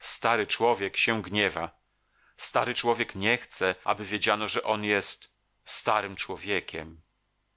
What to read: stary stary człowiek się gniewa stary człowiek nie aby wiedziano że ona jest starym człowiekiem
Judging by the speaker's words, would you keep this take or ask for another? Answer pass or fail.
fail